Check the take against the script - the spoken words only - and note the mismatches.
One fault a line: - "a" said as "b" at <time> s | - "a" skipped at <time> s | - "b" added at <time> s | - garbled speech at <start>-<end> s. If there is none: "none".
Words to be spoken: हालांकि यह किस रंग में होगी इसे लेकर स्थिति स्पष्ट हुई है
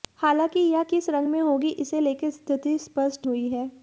none